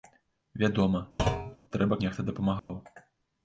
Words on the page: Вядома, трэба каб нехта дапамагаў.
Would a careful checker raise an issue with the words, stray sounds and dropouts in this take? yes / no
yes